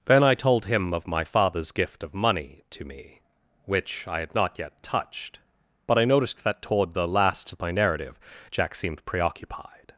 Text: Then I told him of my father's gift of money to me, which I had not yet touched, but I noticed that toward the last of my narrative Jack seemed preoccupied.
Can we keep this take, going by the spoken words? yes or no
yes